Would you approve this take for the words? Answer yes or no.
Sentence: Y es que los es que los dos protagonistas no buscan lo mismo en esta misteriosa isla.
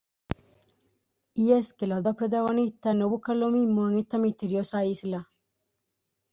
no